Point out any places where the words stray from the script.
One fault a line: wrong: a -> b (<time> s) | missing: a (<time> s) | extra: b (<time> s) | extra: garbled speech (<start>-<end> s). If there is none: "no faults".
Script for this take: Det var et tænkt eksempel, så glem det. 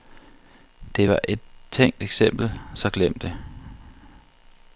no faults